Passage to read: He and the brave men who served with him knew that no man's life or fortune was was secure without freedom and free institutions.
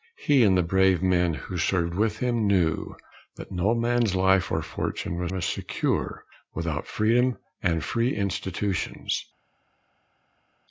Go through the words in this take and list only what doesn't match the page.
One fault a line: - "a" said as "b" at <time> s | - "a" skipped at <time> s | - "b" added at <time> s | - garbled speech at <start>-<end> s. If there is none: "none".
none